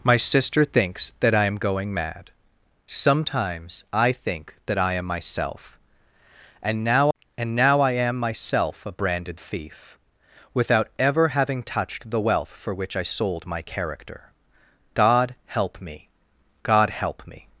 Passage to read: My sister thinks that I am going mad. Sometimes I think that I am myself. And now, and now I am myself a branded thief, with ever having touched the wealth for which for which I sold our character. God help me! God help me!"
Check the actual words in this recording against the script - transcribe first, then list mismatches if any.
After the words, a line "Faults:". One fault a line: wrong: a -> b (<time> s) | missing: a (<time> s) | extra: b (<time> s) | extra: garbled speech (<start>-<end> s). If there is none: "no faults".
My sister thinks that I am going mad. Sometimes I think that I am myself. And now, and now I am myself a branded thief, without ever having touched the wealth for which I sold my character. God help me! God help me!"
Faults:
wrong: with -> without (10.5 s)
missing: for which (13.0 s)
wrong: our -> my (13.5 s)